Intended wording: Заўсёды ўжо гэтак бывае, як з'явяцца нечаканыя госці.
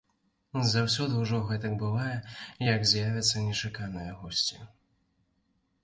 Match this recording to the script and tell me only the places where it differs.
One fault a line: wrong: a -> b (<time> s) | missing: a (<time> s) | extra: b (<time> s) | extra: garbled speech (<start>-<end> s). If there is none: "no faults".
no faults